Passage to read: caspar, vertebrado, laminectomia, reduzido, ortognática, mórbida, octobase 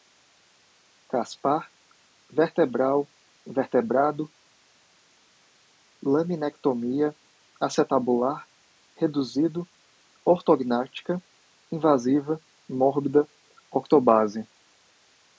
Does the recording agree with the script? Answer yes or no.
no